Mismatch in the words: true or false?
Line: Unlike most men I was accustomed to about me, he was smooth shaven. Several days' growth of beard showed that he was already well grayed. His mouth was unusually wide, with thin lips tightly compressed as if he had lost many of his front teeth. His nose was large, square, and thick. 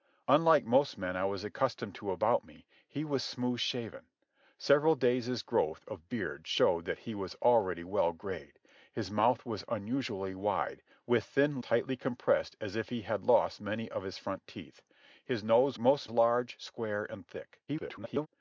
true